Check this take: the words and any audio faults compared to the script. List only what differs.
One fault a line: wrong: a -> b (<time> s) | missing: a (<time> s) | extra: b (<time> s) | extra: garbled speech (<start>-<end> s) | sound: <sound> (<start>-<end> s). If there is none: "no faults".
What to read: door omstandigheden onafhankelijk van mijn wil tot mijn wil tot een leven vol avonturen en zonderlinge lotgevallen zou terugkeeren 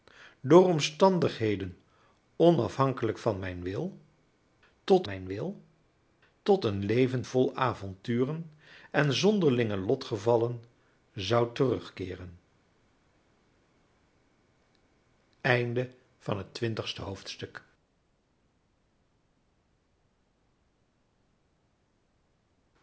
no faults